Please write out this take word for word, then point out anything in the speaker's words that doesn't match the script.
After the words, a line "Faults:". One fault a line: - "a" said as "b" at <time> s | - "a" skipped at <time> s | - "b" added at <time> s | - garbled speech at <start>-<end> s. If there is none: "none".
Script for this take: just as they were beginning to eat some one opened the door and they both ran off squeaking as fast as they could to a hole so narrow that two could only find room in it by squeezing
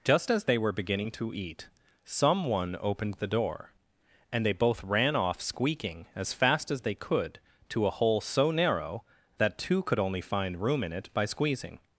just as they were beginning to eat some one opened the door and they both ran off squeaking as fast as they could to a hole so narrow that two could only find room in it by squeezing
Faults:
none